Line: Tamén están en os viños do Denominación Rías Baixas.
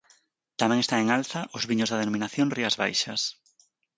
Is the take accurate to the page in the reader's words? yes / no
no